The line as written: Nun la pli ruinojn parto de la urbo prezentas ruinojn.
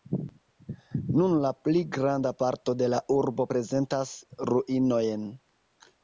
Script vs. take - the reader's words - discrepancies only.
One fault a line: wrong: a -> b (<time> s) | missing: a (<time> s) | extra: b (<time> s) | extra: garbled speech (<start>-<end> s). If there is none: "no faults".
wrong: ruinojn -> granda (2.0 s)